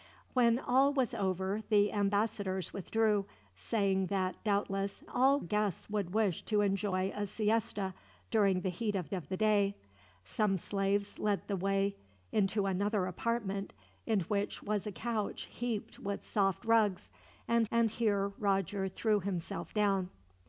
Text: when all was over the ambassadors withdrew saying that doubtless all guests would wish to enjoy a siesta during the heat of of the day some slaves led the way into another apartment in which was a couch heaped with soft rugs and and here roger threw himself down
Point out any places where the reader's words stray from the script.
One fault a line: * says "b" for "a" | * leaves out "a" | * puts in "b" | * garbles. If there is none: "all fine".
all fine